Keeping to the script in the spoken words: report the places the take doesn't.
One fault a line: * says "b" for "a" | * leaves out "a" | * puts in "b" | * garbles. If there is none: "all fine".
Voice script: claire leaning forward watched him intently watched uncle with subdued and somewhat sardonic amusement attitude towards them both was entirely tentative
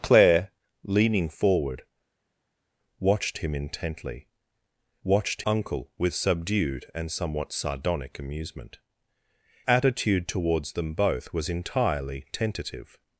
all fine